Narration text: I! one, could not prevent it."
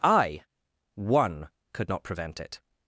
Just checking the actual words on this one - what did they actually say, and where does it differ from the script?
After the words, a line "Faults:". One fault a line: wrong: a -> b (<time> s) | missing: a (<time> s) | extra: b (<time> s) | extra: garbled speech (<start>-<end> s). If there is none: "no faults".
I! one, could not prevent it."
Faults:
no faults